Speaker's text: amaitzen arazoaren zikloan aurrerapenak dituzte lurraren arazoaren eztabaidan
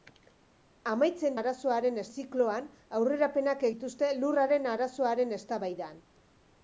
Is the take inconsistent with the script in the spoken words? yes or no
no